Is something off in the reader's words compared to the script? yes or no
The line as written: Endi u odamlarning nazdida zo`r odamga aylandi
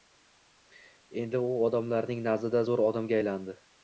no